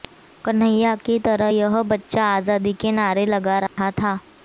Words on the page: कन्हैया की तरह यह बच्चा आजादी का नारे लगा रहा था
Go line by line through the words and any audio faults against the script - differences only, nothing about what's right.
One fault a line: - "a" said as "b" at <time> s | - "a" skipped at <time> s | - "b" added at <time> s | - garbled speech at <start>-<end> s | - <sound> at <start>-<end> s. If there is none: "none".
- "का" said as "के" at 2.8 s
- dropout at 3.7-3.8 s